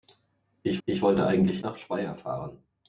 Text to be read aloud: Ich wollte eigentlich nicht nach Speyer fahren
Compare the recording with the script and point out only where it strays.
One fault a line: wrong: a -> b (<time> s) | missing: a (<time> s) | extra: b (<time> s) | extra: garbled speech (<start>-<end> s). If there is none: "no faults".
extra: ich (0.9 s)
missing: nicht (1.6 s)